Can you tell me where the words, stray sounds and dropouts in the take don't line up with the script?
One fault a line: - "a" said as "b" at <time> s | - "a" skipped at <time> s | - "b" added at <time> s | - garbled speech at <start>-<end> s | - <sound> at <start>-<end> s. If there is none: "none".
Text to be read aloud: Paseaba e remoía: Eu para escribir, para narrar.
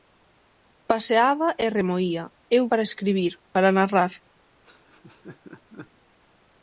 - laugh at 4.6-5.9 s